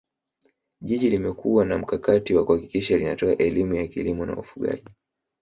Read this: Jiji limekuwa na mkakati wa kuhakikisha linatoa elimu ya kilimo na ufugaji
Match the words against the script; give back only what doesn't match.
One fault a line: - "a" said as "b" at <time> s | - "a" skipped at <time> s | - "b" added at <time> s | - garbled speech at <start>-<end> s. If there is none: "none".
none